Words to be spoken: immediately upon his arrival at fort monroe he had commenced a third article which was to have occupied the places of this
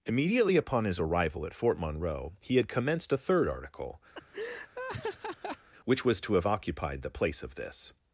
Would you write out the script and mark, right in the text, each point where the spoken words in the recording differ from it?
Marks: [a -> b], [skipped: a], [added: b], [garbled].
immediately upon his arrival at fort monroe he had commenced a third article which was to have occupied the [places -> place] of this